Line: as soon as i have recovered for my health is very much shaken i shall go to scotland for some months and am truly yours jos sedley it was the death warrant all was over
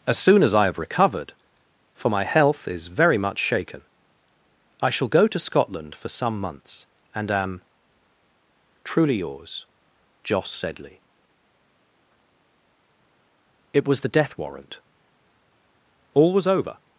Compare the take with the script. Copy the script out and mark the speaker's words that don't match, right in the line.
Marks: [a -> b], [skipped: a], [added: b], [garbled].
as soon as i have recovered for my health is very much shaken i shall go to scotland for some months and am truly yours jos sedley it was the death warrant all was over